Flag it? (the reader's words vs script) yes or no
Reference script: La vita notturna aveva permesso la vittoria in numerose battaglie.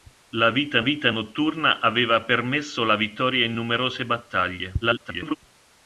yes